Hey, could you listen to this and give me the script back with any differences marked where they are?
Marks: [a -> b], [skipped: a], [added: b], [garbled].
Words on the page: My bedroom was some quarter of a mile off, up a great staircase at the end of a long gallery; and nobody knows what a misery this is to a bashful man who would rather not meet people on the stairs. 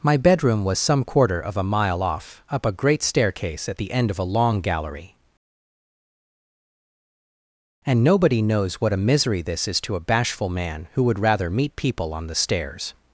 My bedroom was some quarter of a mile off, up a great staircase at the end of a long gallery; and nobody knows what a misery this is to a bashful man who would rather [skipped: not] meet people on the stairs.